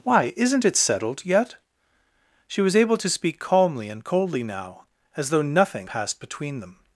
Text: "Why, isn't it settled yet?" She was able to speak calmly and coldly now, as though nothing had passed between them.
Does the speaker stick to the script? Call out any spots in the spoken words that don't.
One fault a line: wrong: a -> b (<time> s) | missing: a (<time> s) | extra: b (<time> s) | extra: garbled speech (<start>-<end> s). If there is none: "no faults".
missing: had (5.9 s)